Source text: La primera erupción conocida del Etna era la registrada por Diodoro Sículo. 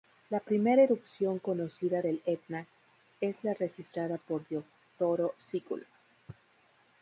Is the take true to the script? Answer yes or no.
no